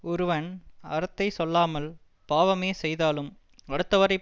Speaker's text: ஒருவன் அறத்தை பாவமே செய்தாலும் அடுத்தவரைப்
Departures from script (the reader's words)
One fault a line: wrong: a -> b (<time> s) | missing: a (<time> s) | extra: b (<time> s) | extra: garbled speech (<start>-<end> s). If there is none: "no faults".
extra: சொல்லாமல் (1.3 s)